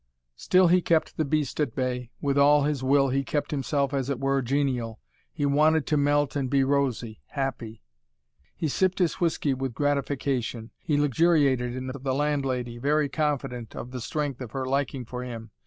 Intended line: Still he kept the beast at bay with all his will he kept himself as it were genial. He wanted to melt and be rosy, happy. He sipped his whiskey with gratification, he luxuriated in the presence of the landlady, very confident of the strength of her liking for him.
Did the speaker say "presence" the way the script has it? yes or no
no